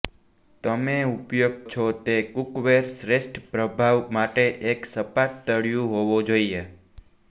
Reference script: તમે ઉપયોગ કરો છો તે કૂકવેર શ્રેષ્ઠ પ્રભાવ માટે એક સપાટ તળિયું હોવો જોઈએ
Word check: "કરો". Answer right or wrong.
wrong